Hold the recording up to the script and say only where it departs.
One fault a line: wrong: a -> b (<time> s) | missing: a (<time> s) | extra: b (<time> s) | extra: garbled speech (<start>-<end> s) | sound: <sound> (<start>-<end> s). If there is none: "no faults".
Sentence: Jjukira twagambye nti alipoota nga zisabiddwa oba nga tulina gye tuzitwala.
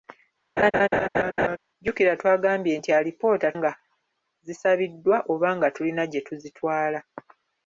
sound: laugh (0.6-1.6 s)